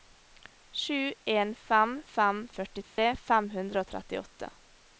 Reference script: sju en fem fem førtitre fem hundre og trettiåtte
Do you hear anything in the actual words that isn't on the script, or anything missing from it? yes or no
no